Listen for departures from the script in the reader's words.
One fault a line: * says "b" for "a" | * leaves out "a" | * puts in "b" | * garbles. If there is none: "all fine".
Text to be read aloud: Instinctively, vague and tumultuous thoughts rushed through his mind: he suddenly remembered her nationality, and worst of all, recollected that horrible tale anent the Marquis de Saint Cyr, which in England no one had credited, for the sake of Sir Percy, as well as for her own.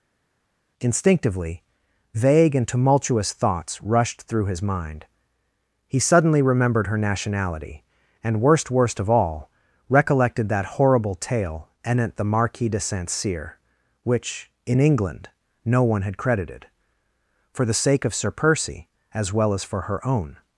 * puts in "worst"